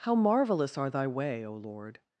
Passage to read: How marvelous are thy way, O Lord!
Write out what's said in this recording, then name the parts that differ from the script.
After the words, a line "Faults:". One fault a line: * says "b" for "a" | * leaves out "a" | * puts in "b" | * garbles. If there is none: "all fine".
How marvelous are thy way, O Lord!
Faults:
all fine